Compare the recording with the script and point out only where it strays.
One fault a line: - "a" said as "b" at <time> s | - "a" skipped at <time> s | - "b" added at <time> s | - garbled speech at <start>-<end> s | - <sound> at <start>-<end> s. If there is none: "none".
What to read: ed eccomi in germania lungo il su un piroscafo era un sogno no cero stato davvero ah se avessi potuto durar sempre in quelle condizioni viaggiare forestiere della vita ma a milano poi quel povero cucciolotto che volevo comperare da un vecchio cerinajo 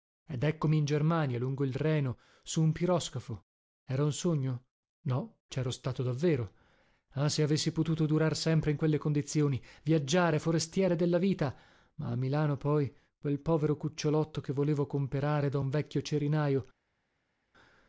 - "reno" added at 1.8 s